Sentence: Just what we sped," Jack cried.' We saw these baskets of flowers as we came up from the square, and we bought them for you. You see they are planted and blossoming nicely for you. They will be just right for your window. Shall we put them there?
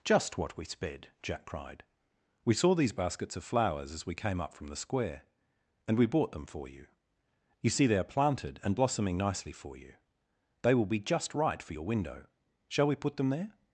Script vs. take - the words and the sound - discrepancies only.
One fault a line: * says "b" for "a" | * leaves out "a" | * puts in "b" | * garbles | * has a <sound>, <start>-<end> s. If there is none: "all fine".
all fine